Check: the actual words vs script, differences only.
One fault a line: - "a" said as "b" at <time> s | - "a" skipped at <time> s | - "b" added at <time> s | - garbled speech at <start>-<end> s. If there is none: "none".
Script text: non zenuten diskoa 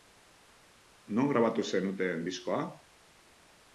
- "grabatu" added at 1.3 s